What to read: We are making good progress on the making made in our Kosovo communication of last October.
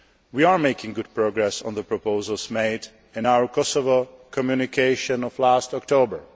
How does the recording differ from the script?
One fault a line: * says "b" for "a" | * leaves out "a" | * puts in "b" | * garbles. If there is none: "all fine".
* says "proposals" for "making"